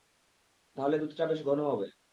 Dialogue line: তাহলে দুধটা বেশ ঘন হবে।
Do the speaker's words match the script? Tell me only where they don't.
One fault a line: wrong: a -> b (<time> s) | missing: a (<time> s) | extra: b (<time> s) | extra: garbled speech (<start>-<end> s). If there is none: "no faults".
no faults